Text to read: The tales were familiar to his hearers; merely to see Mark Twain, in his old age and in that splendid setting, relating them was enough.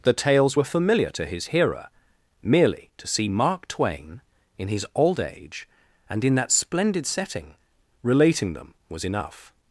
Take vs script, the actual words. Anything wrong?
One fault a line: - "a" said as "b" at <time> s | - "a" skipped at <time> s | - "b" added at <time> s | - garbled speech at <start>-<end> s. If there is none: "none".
- "hearers" said as "hearer" at 1.5 s